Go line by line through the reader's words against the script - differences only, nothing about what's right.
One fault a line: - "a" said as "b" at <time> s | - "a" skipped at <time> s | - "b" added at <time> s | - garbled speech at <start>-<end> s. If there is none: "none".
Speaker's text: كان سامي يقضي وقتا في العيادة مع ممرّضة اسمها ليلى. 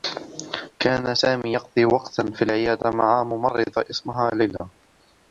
none